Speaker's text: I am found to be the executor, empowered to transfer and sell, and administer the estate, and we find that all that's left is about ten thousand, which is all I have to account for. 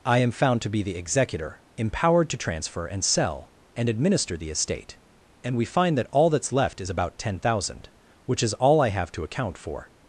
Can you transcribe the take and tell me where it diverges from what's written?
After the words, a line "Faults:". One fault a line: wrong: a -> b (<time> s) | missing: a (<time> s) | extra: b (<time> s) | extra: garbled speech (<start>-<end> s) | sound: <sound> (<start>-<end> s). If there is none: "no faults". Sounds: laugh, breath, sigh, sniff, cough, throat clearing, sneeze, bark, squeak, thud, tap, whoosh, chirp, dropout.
I am found to be the executor, empowered to transfer and sell, and administer the estate, and we find that all that's left is about ten thousand, which is all I have to account for.
Faults:
no faults